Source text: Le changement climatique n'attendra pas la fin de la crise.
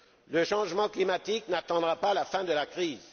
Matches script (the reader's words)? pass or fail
pass